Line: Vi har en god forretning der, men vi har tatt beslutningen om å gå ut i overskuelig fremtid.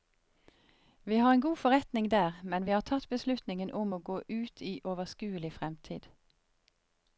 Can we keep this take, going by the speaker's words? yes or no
yes